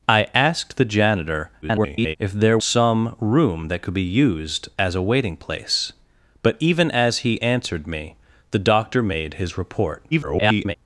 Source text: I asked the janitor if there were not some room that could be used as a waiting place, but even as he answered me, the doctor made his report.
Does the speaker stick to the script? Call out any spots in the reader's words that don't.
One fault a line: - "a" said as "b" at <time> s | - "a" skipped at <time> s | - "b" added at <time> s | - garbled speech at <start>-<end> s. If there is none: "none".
- garbled speech at 1.6-2.2 s
- "were not" skipped at 2.6 s
- garbled speech at 10.1-10.8 s